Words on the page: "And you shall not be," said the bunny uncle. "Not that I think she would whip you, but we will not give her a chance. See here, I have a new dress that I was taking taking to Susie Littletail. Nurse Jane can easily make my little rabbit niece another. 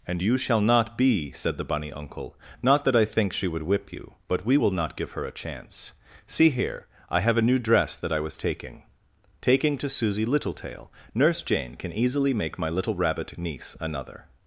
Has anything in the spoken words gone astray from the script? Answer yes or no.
no